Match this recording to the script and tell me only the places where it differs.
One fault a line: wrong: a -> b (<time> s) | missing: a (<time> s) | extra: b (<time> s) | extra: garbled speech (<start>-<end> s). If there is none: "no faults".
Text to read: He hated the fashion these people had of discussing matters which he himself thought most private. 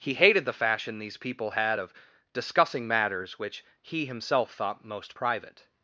no faults